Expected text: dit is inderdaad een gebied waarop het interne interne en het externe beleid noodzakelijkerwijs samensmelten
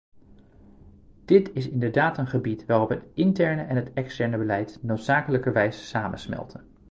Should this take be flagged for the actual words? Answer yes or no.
yes